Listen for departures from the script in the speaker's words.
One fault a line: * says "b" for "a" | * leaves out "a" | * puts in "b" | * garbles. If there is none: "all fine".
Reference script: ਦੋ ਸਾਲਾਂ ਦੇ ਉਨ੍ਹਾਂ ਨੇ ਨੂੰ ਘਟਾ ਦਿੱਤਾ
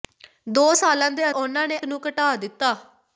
all fine